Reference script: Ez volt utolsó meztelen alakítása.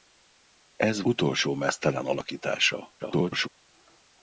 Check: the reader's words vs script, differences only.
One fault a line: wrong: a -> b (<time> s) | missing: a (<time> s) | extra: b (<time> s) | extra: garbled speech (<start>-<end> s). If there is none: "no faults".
missing: volt (1.0 s)
extra: garbled speech (3.0-3.5 s)